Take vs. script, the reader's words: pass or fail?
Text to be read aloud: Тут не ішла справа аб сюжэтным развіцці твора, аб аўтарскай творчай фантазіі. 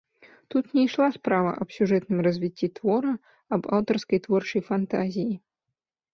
pass